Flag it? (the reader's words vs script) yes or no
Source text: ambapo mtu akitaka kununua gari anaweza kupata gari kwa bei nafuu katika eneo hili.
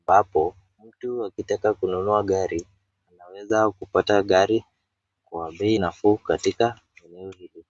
no